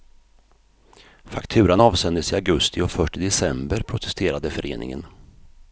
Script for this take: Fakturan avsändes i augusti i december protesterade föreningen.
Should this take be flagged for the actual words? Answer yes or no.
yes